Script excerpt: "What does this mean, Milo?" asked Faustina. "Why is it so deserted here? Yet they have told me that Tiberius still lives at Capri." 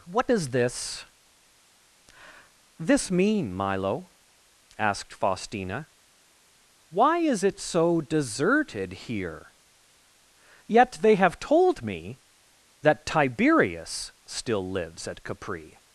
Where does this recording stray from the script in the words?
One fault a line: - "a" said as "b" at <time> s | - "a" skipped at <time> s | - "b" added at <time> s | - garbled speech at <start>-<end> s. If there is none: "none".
- "this" added at 2.8 s